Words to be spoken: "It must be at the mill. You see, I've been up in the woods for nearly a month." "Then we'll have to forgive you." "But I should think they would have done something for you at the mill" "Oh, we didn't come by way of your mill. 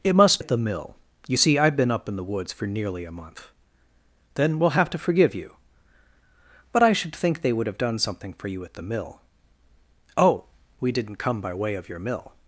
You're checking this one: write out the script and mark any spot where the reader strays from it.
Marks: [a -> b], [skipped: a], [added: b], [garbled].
"It must [skipped: be] at the mill. You see, I've been up in the woods for nearly a month." "Then we'll have to forgive you." "But I should think they would have done something for you at the mill" "Oh, we didn't come by way of your mill.